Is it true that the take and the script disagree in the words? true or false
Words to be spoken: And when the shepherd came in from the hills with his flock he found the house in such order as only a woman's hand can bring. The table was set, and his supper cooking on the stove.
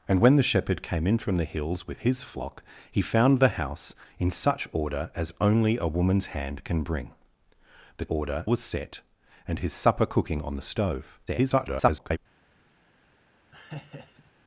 true